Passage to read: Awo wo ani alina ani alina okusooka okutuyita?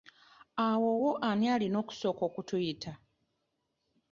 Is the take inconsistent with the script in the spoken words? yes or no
yes